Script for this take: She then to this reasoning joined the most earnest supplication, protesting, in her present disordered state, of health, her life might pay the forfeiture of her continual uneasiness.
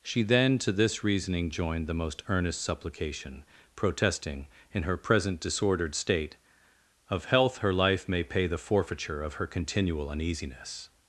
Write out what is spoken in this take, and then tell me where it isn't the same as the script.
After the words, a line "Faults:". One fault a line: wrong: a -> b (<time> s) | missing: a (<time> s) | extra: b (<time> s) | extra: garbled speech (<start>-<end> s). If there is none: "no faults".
She then to this reasoning joined the most earnest supplication, protesting, in her present disordered state, of health, her life may pay the forfeiture of her continual uneasiness.
Faults:
wrong: might -> may (8.1 s)